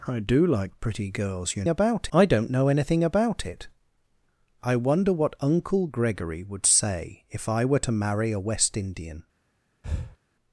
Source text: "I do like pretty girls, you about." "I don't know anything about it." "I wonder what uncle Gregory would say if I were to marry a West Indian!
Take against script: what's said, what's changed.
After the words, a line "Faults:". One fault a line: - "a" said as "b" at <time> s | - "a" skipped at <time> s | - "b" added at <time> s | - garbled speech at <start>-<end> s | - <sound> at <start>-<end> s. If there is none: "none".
"I do like pretty girls, you about." "I don't know anything about it." "I wonder what uncle Gregory would say if I were to marry a West Indian!
Faults:
- breath at 9.8-10.2 s